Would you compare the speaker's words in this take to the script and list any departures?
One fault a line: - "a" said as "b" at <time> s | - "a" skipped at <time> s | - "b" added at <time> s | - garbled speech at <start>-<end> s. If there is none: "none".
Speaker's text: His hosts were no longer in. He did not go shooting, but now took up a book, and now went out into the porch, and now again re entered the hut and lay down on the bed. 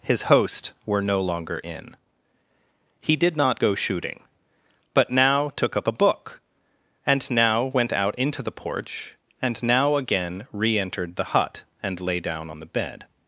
- "hosts" said as "host" at 0.2 s